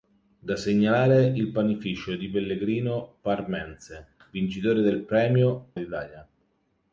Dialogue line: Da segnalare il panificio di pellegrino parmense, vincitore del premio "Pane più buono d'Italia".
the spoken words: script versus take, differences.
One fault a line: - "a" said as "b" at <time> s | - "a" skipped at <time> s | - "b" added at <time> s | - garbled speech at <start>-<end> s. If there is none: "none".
- "Pane più buono" skipped at 5.7 s